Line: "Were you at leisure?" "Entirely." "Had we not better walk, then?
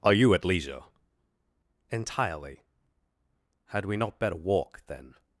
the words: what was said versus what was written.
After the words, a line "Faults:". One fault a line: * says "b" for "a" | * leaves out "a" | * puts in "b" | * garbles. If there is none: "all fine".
"Are you at leisure?" "Entirely." "Had we not better walk, then?
Faults:
* says "Are" for "Were"